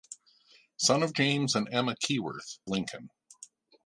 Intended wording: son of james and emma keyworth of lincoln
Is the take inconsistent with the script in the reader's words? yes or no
yes